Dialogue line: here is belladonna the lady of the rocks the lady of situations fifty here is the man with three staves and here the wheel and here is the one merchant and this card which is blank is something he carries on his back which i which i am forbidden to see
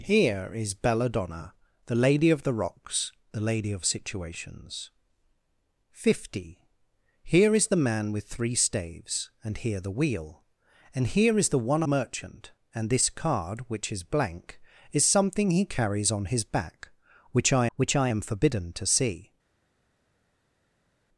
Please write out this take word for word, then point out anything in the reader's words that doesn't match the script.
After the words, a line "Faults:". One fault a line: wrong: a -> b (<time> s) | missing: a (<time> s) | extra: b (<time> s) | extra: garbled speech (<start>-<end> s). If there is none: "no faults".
here is belladonna the lady of the rocks the lady of situations fifty here is the man with three staves and here the wheel and here is the one merchant and this card which is blank is something he carries on his back which i which i am forbidden to see
Faults:
no faults